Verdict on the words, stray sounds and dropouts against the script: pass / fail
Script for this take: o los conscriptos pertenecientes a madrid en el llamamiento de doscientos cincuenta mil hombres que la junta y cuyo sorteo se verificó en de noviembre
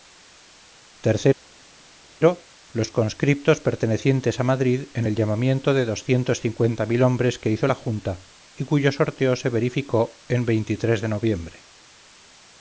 fail